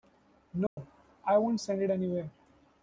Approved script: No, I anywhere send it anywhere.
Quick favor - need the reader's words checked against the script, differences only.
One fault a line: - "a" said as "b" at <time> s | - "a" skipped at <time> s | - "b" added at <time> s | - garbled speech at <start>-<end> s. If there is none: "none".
- "anywhere" said as "won't" at 1.4 s